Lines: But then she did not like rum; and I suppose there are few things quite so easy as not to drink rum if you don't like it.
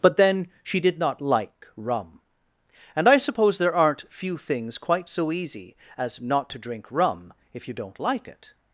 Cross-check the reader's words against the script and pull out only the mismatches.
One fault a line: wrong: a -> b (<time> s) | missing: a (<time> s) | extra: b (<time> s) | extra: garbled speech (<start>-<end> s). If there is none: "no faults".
wrong: are -> aren't (3.8 s)